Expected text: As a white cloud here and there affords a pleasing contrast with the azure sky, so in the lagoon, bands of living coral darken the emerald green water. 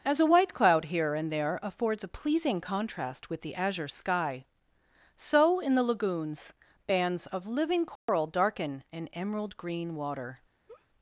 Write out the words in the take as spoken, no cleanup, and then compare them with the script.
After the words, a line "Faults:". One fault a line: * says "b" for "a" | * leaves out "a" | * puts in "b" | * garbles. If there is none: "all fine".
As a white cloud here and there affords a pleasing contrast with the azure sky, so in the lagoons, bands of living coral darken an emerald green water.
Faults:
* says "lagoons" for "lagoon"
* says "an" for "the"